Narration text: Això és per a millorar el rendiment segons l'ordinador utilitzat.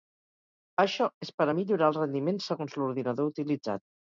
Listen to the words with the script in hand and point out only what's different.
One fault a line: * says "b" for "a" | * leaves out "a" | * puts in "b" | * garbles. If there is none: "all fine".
all fine